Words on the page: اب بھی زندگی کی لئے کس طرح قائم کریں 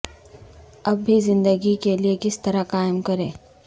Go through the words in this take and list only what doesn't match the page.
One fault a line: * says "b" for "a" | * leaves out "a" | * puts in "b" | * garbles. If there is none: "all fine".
* says "کے" for "کی"